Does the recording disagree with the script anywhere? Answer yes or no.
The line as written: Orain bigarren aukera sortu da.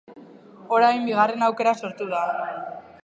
no